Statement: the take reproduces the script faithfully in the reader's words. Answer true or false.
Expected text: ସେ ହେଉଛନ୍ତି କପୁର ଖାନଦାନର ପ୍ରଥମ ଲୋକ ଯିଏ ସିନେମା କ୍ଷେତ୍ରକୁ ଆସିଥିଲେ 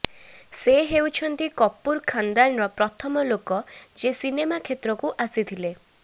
true